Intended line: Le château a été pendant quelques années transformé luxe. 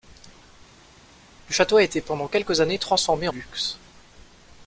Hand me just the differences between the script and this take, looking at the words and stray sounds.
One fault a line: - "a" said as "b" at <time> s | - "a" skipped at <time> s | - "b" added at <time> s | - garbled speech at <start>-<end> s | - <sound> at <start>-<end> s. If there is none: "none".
none